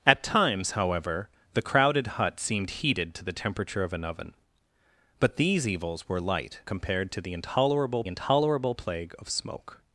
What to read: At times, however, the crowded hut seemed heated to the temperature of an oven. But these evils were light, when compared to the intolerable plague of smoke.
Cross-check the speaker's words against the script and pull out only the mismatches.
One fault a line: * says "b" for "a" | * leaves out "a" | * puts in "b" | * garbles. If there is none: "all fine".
* leaves out "when"
* puts in "intolerable"